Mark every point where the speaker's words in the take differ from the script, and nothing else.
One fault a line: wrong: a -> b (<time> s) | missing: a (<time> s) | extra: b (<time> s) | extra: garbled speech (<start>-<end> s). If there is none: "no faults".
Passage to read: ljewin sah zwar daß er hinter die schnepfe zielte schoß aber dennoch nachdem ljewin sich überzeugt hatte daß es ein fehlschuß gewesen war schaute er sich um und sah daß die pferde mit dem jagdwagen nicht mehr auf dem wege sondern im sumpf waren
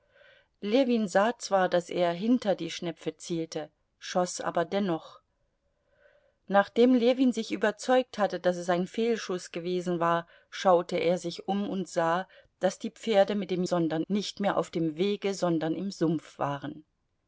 wrong: jagdwagen -> sondern (13.6 s)